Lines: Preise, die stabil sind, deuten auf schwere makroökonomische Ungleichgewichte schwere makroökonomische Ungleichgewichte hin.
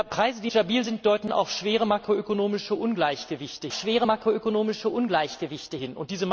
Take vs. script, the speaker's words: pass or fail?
pass